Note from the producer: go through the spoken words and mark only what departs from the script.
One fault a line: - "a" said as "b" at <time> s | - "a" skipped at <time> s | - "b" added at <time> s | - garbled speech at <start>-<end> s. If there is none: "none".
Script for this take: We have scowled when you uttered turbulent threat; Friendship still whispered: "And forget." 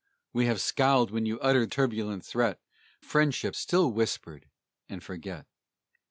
none